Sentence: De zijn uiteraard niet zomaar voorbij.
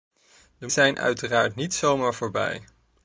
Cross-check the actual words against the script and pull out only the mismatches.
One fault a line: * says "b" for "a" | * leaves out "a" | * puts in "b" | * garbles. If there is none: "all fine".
all fine